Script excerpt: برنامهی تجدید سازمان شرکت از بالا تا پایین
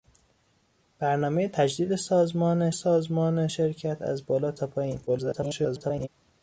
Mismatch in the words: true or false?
true